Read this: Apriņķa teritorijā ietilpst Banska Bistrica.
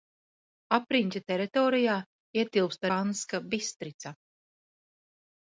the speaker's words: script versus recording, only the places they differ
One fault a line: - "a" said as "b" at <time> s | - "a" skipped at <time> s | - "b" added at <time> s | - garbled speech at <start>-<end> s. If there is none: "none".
none